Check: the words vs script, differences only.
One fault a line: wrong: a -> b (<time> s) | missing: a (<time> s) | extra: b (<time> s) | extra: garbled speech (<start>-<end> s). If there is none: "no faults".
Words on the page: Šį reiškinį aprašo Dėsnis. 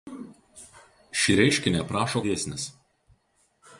no faults